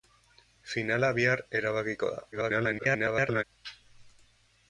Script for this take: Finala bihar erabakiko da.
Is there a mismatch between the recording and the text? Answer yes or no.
yes